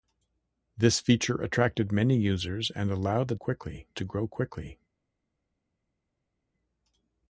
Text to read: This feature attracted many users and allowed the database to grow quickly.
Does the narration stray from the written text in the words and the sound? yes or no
yes